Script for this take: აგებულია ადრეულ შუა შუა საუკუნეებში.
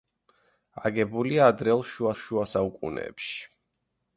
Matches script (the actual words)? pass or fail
pass